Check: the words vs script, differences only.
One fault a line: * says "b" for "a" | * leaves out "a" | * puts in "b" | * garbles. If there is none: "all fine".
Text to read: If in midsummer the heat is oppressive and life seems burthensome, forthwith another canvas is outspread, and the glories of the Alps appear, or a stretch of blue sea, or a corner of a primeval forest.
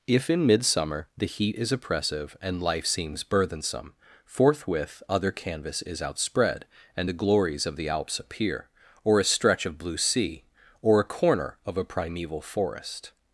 * says "other" for "another"